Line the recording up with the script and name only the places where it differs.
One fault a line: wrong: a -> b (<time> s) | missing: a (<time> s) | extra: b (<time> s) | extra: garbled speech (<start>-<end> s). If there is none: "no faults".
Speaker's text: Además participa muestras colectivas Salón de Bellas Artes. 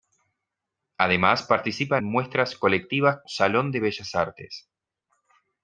no faults